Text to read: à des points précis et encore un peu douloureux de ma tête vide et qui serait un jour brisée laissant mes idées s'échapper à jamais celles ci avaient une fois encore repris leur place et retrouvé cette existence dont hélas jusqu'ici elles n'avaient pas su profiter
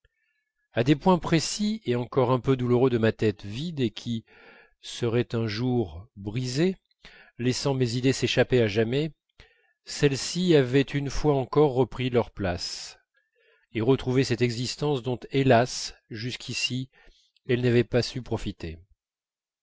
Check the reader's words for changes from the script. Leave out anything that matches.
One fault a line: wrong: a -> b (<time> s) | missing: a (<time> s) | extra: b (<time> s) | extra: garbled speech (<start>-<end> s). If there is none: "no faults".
no faults